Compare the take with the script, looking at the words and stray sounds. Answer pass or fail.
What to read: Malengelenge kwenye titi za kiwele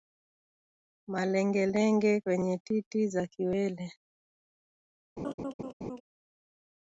fail